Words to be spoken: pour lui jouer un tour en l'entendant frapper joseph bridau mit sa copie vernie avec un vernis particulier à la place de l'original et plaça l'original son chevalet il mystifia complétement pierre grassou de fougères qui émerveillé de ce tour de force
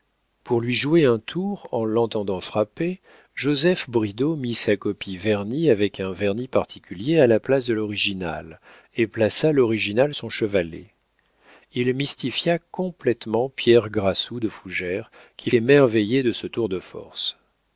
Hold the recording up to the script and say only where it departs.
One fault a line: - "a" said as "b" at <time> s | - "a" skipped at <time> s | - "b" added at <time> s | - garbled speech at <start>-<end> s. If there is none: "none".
none